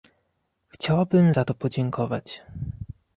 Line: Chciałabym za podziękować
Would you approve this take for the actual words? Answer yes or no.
no